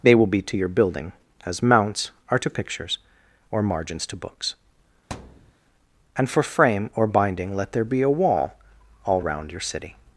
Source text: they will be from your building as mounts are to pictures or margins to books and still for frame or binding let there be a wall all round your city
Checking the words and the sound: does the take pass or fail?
fail